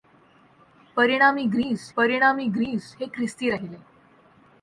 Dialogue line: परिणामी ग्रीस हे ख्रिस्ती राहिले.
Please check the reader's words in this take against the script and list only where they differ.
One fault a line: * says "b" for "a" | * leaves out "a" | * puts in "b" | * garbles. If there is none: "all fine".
* puts in "परिणामी ग्रीस"